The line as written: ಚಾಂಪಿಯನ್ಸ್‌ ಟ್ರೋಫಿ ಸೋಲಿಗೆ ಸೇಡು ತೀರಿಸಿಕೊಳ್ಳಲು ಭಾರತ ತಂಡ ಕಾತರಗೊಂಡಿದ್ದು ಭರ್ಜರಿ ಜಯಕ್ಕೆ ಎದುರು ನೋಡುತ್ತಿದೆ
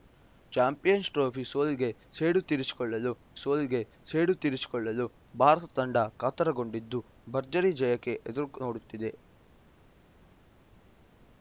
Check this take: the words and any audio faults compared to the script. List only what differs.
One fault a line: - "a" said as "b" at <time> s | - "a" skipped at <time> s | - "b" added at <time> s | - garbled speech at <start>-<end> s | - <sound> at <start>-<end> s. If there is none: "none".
- "ಸೋಲಿಗೆ ಸೇಡು ತೀರಿಸಿಕೊಳ್ಳಲು" added at 3.3 s